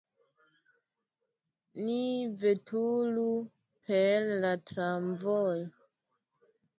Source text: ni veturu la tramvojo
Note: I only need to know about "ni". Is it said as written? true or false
true